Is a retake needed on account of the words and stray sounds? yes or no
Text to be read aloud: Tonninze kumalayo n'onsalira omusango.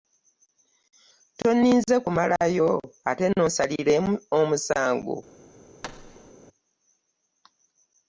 yes